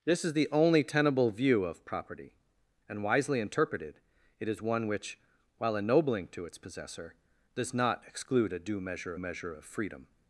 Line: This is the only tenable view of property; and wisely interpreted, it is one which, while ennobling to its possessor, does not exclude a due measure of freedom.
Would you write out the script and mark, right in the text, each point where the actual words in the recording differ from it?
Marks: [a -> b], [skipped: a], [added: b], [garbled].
This is the only tenable view of property; and wisely interpreted, it is one which, while ennobling to its possessor, does not exclude a due measure [added: measure] of freedom.